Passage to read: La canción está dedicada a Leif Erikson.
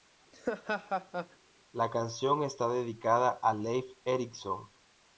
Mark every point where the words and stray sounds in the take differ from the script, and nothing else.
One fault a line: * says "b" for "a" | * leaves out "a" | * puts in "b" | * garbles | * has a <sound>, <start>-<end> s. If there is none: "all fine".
* has a laugh, 0.3-1.4 s